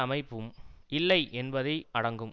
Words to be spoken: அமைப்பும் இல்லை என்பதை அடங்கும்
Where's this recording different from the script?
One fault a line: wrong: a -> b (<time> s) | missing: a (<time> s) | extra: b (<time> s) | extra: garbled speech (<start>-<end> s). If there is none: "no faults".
no faults